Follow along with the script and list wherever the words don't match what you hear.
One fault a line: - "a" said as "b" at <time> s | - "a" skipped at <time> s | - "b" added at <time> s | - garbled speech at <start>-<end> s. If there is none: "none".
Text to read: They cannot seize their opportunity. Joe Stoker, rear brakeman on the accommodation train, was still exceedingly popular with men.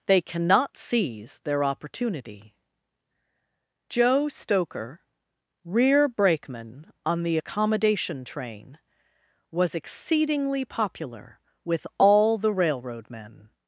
- "still" skipped at 9.7 s
- "all the railroad" added at 12.0 s